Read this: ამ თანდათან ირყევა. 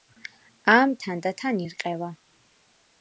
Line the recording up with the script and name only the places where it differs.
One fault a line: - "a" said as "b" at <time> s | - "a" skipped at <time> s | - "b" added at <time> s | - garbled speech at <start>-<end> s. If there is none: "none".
none